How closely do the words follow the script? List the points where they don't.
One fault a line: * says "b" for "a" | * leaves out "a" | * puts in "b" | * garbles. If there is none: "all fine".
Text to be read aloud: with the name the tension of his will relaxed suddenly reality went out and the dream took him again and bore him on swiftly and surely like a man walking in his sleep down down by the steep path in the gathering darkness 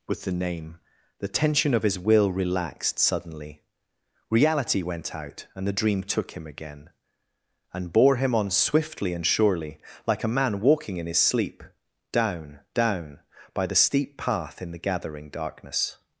all fine